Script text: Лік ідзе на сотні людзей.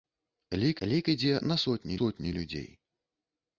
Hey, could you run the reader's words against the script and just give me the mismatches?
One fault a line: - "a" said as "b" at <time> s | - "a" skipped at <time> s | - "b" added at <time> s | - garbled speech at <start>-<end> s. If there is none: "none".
- "лік" added at 0.8 s
- "сотні" added at 2.0 s